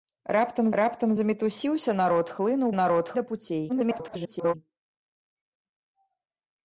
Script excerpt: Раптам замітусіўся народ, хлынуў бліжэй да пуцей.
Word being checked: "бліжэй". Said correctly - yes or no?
no